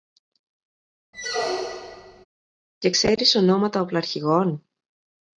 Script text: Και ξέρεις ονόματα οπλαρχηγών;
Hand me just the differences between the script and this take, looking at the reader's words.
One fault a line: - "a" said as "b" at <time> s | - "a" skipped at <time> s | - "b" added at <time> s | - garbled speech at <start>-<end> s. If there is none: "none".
none